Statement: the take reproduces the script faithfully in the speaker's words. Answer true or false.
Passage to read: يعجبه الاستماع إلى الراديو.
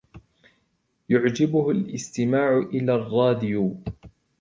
true